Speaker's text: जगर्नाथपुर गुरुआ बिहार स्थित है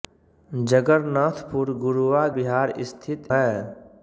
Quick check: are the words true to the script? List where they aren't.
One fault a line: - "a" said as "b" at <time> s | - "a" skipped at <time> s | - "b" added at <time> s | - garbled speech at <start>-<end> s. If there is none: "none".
none